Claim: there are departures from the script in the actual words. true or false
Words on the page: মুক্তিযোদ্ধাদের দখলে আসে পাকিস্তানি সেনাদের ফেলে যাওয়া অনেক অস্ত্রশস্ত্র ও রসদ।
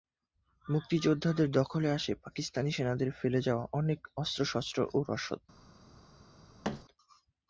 false